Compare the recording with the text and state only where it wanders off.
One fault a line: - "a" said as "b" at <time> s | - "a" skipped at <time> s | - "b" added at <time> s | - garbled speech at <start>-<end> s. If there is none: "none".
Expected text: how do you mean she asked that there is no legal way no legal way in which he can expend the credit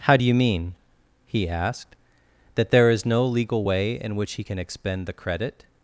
- "she" said as "he" at 1.3 s
- "no legal way" skipped at 3.9 s